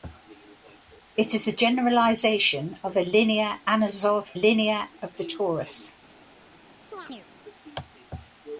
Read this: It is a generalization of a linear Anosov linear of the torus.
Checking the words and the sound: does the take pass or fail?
fail